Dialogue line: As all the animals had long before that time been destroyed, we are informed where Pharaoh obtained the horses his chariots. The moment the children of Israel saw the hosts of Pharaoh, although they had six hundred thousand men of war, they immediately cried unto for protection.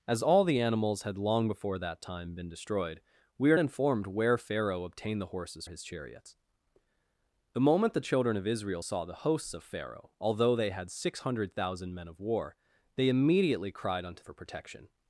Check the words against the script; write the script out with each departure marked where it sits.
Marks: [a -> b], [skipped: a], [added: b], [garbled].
As all the animals had long before that time been destroyed, we are informed where Pharaoh obtained the horses his chariots. The moment the children of Israel saw the hosts of Pharaoh, although they had six hundred thousand men of war, they immediately cried unto for protection.